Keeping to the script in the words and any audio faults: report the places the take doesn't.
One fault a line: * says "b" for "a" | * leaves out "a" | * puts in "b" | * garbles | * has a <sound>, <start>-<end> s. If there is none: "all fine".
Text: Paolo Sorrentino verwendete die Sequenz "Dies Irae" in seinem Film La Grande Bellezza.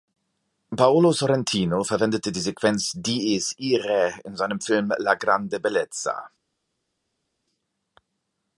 all fine